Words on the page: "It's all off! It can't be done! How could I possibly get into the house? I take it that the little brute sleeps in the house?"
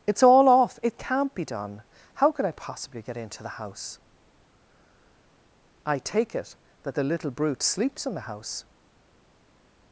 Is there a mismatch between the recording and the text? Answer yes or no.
no